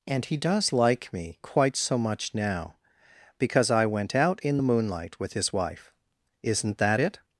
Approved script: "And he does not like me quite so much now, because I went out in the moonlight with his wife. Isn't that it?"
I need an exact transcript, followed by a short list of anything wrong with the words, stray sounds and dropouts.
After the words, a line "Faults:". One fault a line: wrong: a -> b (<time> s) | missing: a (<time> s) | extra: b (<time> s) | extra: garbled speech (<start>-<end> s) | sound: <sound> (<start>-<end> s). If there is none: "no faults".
"And he does like me quite so much now, because I went out in the moonlight with his wife. Isn't that it?"
Faults:
missing: not (0.7 s)